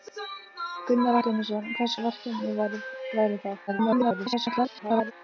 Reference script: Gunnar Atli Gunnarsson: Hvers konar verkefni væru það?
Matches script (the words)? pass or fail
fail